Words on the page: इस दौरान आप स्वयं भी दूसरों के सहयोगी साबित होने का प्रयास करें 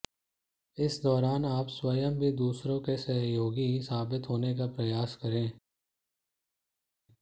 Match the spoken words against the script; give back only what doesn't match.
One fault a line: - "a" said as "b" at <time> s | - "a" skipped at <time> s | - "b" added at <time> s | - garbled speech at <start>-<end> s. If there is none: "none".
none